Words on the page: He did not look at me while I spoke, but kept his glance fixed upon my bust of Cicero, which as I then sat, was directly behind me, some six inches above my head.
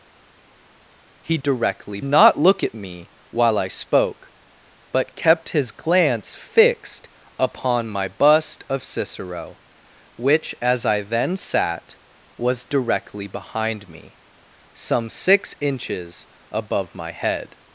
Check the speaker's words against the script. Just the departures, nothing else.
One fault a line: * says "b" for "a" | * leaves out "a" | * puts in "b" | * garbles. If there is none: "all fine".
* says "directly" for "did"